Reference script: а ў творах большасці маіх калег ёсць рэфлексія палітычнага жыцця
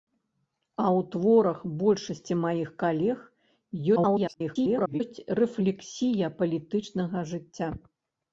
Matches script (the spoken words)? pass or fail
fail